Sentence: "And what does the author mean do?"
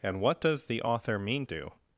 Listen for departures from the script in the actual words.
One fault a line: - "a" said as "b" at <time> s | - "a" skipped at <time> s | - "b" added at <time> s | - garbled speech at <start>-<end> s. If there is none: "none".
none